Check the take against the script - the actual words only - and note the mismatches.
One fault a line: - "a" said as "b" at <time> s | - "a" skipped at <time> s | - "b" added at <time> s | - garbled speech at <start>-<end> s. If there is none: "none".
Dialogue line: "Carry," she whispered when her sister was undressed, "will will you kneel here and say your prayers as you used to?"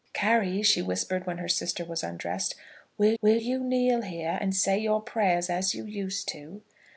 none